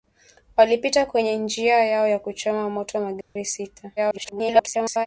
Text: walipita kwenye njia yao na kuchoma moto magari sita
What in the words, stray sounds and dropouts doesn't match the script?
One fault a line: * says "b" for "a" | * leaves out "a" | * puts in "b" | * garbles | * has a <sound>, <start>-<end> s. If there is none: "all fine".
* has a dropout, 3.2-3.4 s
* garbles